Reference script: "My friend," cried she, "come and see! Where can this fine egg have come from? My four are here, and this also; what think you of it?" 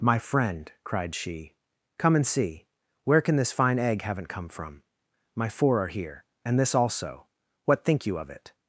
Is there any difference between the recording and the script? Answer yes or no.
yes